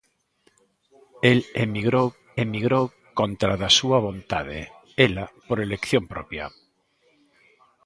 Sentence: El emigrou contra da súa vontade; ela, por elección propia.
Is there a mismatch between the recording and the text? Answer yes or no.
yes